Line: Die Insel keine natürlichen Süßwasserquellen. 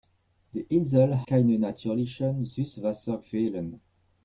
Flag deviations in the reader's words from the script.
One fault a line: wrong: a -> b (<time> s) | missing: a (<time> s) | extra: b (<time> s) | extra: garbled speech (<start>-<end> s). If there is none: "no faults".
no faults